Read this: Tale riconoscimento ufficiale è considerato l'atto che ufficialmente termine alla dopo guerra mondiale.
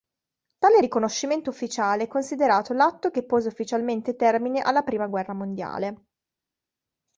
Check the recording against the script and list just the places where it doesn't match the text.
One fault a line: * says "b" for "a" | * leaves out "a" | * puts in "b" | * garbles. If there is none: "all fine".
* puts in "pose"
* says "prima" for "dopo"